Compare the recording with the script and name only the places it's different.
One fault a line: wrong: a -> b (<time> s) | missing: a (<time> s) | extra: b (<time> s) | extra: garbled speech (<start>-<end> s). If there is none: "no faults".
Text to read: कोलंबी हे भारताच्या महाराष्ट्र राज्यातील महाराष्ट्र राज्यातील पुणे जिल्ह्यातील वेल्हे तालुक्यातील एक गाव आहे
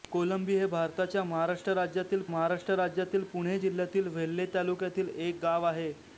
no faults